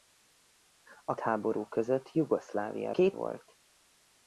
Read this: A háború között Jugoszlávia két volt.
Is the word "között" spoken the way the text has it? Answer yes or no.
yes